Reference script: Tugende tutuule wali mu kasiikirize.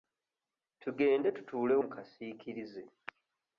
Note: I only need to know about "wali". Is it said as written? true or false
false